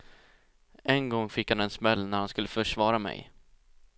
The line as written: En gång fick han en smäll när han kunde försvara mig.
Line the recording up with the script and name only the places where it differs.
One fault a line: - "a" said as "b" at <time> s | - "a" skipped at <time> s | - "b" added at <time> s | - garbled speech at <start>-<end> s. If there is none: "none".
- "kunde" said as "skulle" at 2.3 s